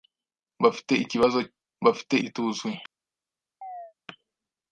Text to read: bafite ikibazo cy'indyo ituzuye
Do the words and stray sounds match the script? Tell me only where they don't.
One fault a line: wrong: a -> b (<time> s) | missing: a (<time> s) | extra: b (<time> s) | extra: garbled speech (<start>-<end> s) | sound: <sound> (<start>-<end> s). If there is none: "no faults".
wrong: cy'indyo -> bafite (1.8 s)
sound: chirp (3.6-3.9 s)